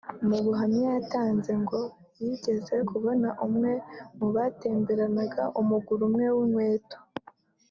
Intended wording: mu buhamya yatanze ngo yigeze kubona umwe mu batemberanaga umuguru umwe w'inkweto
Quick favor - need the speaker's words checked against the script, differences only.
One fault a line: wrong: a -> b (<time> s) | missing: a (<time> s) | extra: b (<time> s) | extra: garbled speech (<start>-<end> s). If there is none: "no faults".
no faults